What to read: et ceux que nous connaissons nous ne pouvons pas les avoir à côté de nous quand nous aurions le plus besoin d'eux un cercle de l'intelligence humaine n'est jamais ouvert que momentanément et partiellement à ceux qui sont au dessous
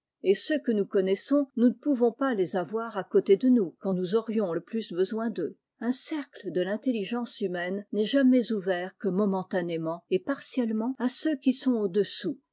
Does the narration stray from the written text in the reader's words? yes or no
no